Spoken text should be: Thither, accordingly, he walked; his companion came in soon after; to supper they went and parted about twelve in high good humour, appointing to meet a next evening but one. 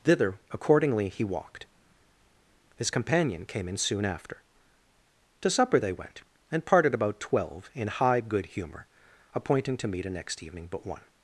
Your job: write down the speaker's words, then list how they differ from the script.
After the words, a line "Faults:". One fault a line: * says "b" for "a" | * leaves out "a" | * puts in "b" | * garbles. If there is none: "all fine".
Thither, accordingly, he walked; his companion came in soon after; to supper they went and parted about twelve in high good humour, appointing to meet a next evening but one.
Faults:
all fine